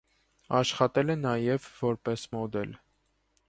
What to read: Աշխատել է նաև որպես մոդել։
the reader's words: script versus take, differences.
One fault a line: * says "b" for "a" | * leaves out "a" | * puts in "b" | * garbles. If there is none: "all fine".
all fine